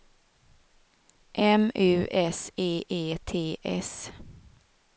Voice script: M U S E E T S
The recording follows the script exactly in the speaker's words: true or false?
true